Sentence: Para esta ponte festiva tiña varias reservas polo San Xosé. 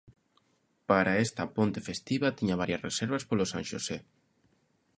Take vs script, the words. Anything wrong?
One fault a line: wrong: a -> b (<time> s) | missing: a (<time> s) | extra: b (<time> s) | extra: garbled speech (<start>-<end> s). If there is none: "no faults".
no faults